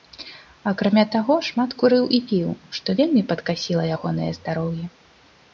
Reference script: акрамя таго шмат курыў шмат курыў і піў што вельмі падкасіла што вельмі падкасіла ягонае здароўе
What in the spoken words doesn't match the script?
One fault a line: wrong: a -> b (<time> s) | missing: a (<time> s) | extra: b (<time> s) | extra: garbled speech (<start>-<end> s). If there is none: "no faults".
missing: шмат курыў (2.1 s)
missing: што вельмі падкасіла (3.9 s)